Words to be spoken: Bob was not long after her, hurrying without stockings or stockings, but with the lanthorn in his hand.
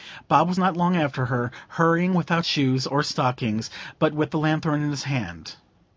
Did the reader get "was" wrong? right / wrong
right